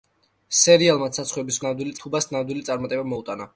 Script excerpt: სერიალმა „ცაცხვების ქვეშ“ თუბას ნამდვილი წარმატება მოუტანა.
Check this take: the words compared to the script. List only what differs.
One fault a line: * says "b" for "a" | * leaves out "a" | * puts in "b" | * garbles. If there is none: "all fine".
* says "ნამდვილი" for "ქვეშ"